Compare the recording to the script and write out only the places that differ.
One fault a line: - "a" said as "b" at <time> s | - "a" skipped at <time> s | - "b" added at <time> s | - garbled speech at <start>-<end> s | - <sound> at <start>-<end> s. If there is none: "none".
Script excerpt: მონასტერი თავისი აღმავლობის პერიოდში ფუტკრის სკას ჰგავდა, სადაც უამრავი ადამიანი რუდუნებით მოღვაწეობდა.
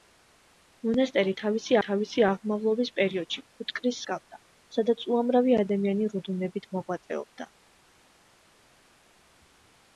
- "თავისი" added at 1.9 s
- "სკას" skipped at 4.0 s